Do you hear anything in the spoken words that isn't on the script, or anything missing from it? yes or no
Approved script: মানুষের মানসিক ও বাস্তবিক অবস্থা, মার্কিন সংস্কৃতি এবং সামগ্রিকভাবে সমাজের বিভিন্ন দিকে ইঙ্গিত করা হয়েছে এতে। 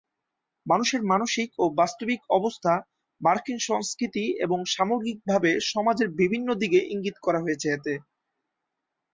no